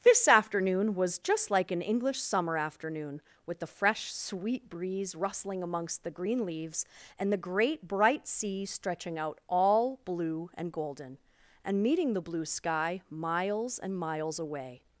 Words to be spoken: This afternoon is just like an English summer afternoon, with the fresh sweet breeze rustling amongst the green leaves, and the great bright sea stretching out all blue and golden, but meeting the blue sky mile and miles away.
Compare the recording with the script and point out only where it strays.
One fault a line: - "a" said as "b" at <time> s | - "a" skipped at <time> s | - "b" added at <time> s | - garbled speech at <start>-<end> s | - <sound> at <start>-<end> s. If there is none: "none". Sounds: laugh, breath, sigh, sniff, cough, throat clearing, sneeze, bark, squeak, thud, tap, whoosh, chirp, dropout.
- "is" said as "was" at 0.9 s
- "but" said as "and" at 11.6 s
- "mile" said as "miles" at 13.1 s